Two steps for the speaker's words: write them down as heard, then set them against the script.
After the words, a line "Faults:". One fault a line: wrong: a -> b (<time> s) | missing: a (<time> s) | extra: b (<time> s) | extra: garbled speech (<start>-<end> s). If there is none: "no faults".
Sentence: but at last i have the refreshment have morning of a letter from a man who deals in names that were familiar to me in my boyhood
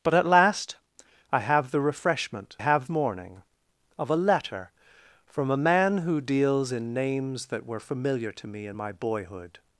but at last i have the refreshment have morning of a letter from a man who deals in names that were familiar to me in my boyhood
Faults:
no faults